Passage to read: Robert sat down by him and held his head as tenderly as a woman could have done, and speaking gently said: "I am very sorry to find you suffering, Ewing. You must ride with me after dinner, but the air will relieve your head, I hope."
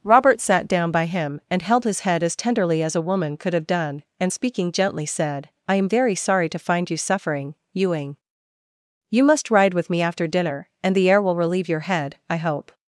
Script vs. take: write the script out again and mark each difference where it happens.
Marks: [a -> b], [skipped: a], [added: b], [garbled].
Robert sat down by him and held his head as tenderly as a woman could have done, and speaking gently said: "I am very sorry to find you suffering, Ewing. You must ride with me after dinner, [but -> and] the air will relieve your head, I hope."